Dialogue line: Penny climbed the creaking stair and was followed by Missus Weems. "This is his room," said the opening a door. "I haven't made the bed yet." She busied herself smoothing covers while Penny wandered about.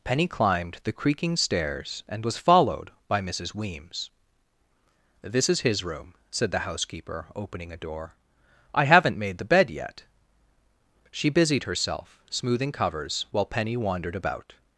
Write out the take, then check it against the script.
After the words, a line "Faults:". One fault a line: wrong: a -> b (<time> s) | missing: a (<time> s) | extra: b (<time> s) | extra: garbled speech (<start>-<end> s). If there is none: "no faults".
Penny climbed the creaking stairs and was followed by Missus Weems. "This is his room," said the housekeeper, opening a door. "I haven't made the bed yet." She busied herself smoothing covers while Penny wandered about.
Faults:
wrong: stair -> stairs (1.4 s)
extra: housekeeper (6.7 s)